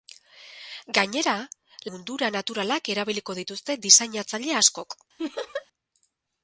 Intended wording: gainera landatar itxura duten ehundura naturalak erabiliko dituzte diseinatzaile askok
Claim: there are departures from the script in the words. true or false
true